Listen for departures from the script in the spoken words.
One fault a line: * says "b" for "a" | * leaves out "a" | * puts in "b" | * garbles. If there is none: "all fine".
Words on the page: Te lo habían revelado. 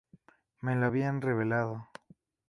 * says "Me" for "Te"